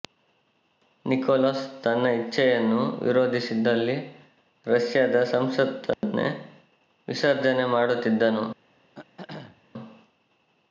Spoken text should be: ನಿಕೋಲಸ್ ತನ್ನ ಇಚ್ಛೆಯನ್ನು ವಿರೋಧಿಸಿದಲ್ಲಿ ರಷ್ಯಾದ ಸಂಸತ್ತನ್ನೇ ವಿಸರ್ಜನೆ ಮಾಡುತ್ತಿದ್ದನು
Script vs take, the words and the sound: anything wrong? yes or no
yes